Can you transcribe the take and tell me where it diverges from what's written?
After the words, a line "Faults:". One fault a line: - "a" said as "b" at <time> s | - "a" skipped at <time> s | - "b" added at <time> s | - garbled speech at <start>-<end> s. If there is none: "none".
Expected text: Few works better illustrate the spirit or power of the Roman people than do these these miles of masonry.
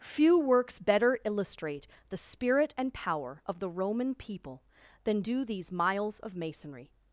Few works better illustrate the spirit and power of the Roman people than do these miles of masonry.
Faults:
- "or" said as "and" at 2.8 s
- "these" skipped at 5.7 s